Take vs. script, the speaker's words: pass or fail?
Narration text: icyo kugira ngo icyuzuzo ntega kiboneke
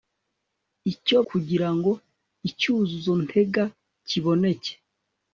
pass